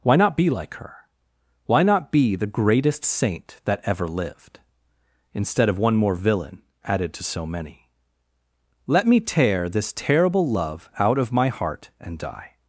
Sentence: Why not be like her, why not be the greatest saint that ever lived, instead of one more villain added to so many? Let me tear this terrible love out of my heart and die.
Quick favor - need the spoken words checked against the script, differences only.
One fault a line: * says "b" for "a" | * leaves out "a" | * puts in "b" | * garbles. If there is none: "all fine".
all fine